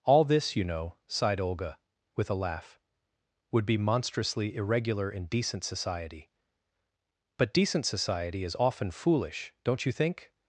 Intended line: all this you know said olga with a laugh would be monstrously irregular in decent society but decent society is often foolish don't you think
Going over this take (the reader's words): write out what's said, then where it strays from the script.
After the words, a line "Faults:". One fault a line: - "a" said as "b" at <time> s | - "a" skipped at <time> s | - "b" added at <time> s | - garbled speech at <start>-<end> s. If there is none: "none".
all this you know sighed olga with a laugh would be monstrously irregular in decent society but decent society is often foolish don't you think
Faults:
- "said" said as "sighed" at 1.1 s